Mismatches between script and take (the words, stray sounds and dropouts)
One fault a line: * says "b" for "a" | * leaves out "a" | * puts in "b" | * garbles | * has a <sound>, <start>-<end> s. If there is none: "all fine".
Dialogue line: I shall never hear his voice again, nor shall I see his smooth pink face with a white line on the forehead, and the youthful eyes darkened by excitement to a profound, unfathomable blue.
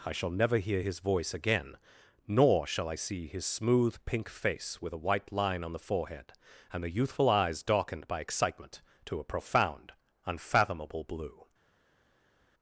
all fine